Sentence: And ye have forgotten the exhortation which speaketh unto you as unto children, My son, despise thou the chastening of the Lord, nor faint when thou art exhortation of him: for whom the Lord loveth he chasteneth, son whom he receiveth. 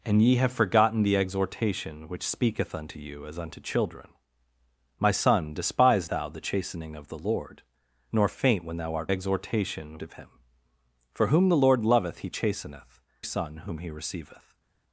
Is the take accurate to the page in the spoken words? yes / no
yes